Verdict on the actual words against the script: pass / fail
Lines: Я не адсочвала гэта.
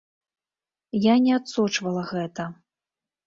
pass